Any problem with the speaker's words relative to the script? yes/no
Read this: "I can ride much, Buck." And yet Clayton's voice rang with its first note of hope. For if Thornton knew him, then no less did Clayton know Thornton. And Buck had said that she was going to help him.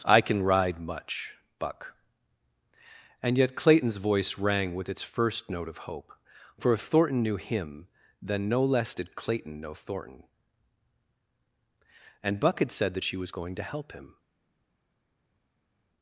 no